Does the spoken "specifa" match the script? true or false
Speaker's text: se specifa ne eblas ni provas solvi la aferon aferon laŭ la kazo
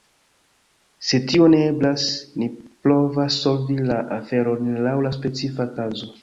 false